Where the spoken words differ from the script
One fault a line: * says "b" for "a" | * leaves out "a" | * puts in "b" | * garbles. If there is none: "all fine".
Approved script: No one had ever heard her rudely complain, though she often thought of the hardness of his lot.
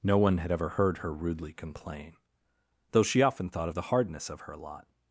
* says "her" for "his"